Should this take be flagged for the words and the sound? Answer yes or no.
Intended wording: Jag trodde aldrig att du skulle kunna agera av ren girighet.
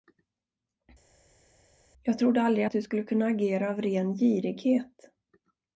no